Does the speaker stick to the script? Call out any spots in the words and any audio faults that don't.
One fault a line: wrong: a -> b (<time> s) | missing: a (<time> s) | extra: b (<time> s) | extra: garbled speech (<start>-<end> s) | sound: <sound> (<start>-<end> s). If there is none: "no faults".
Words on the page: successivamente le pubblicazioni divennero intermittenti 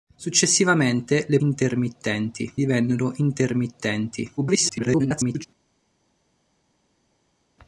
wrong: pubblicazioni -> intermittenti (1.4 s)
extra: garbled speech (4.4-5.5 s)